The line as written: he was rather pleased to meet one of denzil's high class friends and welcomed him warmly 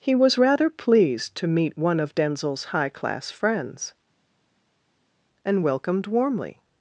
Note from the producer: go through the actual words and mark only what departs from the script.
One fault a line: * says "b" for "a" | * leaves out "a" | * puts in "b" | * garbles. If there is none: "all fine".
* leaves out "him"